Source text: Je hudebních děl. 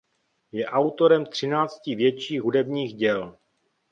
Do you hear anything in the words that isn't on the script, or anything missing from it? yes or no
yes